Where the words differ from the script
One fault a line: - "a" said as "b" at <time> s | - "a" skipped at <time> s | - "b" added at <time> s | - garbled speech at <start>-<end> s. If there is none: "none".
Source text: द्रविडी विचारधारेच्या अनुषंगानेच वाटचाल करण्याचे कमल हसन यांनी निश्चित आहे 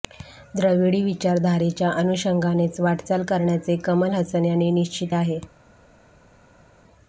none